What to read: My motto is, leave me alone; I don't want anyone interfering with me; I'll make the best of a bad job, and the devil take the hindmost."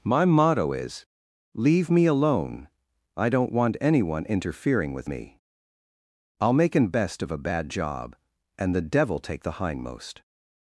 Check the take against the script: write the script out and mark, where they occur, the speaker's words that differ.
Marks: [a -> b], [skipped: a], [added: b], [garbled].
My motto is, leave me alone; I don't want anyone interfering with me; I'll make [the -> an] best of a bad job, and the devil take the hindmost."